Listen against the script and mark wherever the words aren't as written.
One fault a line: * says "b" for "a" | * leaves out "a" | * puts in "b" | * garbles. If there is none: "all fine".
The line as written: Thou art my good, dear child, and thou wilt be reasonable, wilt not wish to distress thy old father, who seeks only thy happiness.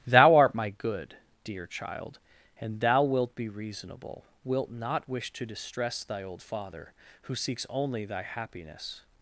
all fine